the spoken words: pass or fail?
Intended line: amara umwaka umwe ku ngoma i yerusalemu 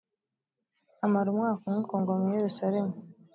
pass